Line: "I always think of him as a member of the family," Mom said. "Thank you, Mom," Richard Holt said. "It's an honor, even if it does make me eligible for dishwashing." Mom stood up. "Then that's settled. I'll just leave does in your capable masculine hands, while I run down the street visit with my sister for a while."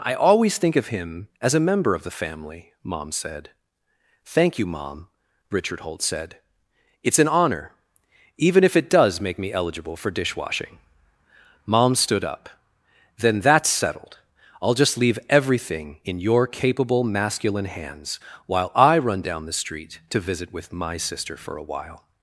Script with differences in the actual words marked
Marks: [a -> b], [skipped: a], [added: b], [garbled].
"I always think of him as a member of the family," Mom said. "Thank you, Mom," Richard Holt said. "It's an honor, even if it does make me eligible for dishwashing." Mom stood up. "Then that's settled. I'll just leave [does -> everything] in your capable masculine hands, while I run down the street [added: to] visit with my sister for a while."